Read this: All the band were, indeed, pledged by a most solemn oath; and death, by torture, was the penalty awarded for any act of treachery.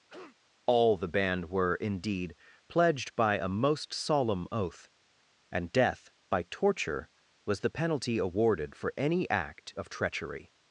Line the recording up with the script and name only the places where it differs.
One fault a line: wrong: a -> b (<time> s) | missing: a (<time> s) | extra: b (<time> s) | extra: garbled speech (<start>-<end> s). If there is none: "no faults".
no faults